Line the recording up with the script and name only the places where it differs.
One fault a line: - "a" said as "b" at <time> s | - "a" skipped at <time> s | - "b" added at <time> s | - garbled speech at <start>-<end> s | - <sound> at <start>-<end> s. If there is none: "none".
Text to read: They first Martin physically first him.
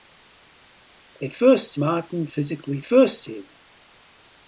none